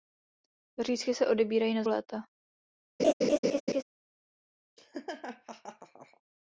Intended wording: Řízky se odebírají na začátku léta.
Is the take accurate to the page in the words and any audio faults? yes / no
no